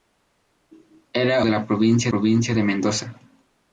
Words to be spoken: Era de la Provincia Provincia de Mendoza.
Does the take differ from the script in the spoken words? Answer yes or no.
no